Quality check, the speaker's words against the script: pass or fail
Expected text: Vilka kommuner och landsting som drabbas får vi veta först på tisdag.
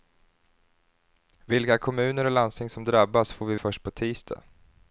fail